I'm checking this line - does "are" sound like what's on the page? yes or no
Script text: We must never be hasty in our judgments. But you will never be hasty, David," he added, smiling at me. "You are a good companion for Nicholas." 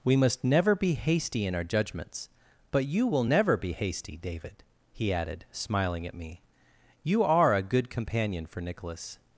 yes